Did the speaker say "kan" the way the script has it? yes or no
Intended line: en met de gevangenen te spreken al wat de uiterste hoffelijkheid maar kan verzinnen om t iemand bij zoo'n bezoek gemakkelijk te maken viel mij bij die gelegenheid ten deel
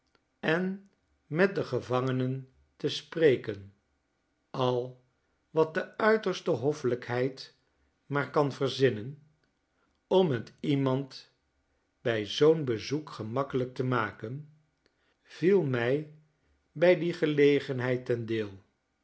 yes